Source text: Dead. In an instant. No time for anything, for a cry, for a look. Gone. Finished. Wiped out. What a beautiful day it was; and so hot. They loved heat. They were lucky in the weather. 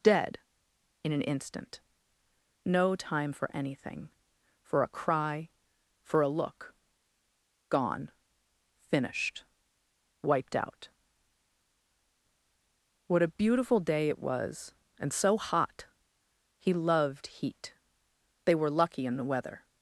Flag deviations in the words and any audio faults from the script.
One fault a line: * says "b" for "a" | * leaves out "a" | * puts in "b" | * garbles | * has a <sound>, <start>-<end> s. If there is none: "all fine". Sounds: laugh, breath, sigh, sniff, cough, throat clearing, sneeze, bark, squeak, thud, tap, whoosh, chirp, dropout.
* says "He" for "They"